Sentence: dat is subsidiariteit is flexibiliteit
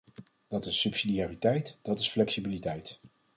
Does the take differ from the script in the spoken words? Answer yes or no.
yes